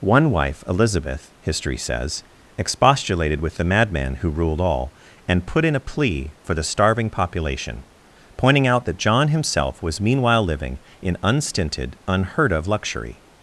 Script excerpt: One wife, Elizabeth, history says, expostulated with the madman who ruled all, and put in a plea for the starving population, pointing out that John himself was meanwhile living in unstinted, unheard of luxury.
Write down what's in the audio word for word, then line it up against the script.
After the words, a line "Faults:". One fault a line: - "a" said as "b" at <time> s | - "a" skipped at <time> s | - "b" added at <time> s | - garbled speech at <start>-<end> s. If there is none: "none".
One wife, Elizabeth, history says, expostulated with the madman who ruled all, and put in a plea for the starving population, pointing out that John himself was meanwhile living in unstinted, unheard of luxury.
Faults:
none